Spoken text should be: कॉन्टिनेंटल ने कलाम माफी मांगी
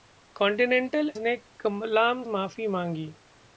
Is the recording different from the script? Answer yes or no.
no